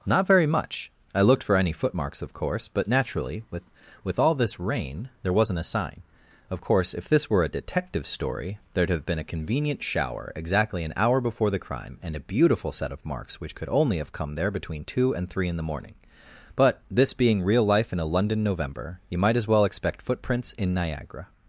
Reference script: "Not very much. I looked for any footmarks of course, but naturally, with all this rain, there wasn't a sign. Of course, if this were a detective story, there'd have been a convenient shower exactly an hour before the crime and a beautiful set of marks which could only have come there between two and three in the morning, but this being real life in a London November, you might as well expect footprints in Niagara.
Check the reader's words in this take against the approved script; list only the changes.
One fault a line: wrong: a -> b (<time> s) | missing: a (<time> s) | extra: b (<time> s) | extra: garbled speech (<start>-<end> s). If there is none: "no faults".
extra: with (4.0 s)